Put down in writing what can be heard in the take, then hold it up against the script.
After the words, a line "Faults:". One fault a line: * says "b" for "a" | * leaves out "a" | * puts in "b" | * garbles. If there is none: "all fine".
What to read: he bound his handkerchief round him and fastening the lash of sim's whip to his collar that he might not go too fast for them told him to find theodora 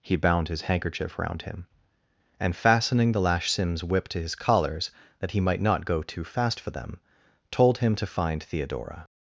he bound his handkerchief round him and fastening the lash sim's whip to his collars that he might not go too fast for them told him to find theodora
Faults:
* leaves out "of"
* says "collars" for "collar"